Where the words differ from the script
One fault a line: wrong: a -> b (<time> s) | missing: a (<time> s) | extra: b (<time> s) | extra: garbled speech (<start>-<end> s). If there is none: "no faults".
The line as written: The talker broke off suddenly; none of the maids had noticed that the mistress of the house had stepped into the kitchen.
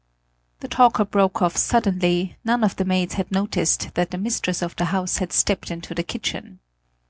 no faults